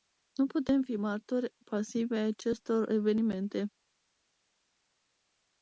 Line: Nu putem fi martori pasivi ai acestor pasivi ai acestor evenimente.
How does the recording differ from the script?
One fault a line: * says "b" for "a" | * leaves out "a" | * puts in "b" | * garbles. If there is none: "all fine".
* leaves out "pasivi ai acestor"